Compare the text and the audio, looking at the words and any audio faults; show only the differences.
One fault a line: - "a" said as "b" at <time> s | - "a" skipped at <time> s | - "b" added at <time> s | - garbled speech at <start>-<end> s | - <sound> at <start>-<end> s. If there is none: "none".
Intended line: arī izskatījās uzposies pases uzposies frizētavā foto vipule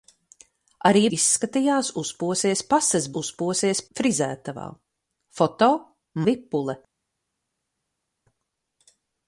none